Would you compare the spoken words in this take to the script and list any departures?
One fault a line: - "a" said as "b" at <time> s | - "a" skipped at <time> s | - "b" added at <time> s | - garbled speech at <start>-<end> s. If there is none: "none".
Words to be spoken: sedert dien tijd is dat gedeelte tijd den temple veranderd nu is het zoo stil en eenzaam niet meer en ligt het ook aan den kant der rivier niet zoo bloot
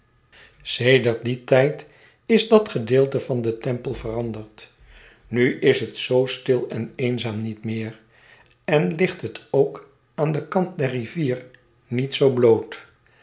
- "tijd" said as "van" at 3.2 s